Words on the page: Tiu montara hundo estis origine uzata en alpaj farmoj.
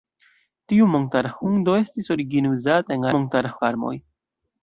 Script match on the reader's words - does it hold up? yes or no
no